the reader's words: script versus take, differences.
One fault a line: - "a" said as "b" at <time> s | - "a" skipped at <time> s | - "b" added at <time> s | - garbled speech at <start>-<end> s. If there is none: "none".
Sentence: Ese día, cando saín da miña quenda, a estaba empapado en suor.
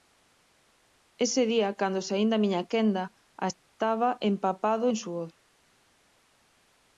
none